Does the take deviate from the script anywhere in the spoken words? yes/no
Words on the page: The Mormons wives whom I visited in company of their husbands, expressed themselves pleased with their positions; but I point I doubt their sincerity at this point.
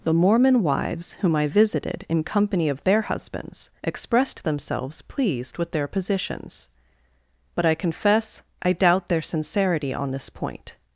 yes